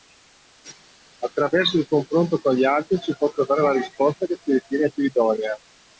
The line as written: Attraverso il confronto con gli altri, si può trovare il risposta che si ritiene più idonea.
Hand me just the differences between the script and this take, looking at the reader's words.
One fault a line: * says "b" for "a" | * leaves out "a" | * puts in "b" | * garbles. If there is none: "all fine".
* says "la" for "il"